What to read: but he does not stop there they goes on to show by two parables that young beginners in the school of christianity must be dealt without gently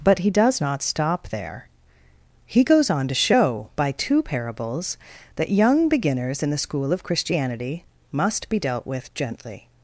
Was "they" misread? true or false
true